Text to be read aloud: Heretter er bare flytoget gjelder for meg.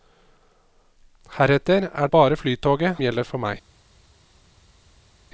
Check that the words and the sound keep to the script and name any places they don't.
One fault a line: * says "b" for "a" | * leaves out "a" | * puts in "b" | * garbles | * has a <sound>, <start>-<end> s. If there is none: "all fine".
all fine